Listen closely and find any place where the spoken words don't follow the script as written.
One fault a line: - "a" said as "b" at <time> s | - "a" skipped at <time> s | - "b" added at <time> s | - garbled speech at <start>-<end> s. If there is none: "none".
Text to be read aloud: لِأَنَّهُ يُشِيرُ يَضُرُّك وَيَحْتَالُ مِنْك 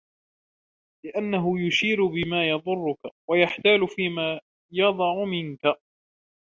- "بِمَا" added at 2.0 s
- "فِيمَا يَضَعُ" added at 3.9 s